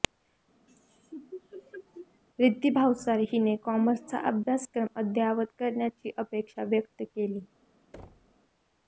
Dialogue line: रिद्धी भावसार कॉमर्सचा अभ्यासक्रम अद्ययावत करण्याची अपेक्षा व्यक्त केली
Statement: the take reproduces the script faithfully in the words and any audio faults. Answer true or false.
false